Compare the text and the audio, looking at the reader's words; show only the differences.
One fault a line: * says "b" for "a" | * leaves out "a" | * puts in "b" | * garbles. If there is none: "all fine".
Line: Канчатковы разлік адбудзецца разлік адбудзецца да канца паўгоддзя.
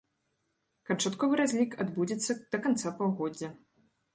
* leaves out "разлік адбудзецца"